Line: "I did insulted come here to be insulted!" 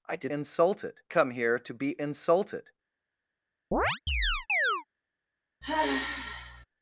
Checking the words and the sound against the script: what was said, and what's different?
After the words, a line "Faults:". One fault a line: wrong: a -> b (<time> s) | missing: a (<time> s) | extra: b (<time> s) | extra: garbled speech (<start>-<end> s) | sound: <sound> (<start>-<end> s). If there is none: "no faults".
"I did insulted come here to be insulted!"
Faults:
sound: chirp (3.7-4.8 s)
sound: sigh (5.6-6.7 s)